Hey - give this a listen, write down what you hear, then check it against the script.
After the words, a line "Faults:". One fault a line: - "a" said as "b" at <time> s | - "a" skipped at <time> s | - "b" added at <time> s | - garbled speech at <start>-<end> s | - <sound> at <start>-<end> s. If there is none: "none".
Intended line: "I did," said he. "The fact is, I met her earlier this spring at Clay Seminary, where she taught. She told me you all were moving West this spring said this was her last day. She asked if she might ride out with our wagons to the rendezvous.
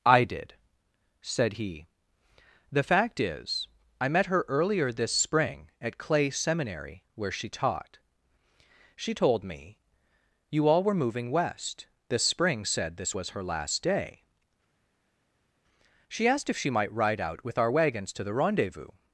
"I did," said he. "The fact is, I met her earlier this spring at Clay Seminary, where she taught. She told me you all were moving West this spring said this was her last day. She asked if she might ride out with our wagons to the rendezvous.
Faults:
none